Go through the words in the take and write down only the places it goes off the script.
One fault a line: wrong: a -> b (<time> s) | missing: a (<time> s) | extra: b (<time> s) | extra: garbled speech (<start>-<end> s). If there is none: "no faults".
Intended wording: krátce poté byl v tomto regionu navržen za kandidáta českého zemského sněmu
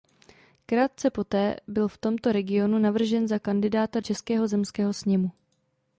no faults